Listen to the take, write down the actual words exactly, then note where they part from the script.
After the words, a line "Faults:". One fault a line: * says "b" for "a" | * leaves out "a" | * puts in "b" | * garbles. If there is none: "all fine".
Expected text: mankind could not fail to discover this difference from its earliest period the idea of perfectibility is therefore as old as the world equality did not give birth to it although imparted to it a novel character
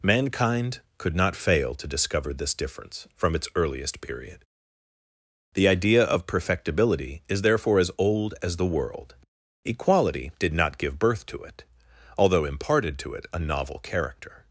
mankind could not fail to discover this difference from its earliest period the idea of perfectibility is therefore as old as the world equality did not give birth to it although imparted to it a novel character
Faults:
all fine